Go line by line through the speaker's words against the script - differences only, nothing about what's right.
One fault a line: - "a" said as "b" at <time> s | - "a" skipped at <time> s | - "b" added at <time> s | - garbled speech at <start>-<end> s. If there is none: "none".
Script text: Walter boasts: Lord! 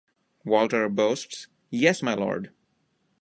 - "Yes my" added at 1.7 s